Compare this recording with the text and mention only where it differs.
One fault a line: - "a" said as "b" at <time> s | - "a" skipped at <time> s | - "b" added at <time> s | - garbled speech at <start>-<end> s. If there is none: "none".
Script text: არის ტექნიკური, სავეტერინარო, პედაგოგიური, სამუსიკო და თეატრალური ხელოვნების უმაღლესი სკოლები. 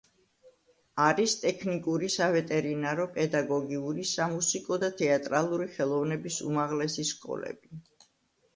none